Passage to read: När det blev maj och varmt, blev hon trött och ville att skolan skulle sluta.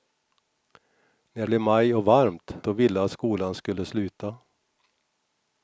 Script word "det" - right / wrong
wrong